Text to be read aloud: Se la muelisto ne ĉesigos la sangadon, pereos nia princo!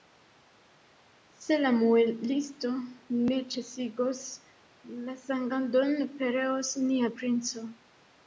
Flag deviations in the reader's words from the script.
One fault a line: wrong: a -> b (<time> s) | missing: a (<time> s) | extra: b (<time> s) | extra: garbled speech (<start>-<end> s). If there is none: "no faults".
no faults